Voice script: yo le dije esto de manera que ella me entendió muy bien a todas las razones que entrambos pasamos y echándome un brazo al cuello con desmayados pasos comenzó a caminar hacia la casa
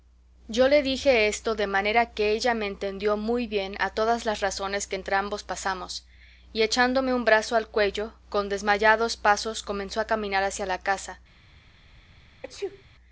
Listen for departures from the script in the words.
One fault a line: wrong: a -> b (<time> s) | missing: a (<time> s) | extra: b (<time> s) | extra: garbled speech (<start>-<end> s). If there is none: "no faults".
no faults